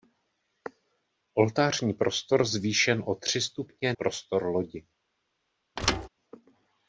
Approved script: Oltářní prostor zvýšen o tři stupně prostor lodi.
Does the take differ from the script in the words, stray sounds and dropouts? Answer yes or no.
yes